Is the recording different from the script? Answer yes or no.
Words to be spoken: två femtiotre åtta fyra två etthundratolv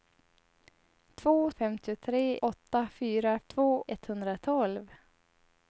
no